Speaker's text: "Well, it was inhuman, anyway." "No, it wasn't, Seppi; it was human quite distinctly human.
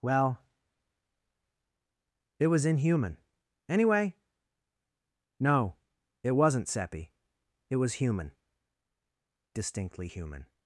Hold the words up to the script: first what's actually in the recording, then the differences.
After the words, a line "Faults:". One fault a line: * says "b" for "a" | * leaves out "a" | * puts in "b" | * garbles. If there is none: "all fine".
"Well, it was inhuman, anyway." "No, it wasn't, Seppi; it was human distinctly human.
Faults:
* leaves out "quite"